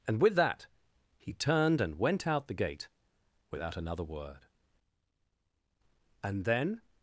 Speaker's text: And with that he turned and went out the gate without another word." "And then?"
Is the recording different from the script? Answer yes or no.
no